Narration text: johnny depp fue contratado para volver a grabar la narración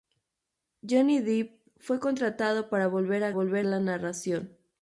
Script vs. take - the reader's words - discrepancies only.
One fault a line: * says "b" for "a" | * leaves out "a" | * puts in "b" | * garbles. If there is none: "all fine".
* says "volver" for "grabar"